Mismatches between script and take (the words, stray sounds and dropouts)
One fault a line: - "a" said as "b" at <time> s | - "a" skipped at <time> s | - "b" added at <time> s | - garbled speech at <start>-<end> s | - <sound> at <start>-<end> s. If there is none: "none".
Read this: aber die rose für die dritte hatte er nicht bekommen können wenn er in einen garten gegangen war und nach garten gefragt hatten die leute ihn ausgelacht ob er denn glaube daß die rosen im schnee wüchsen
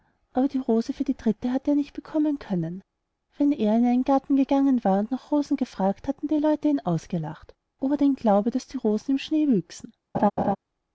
- "garten" said as "rosen" at 5.3 s
- laugh at 10.1-10.6 s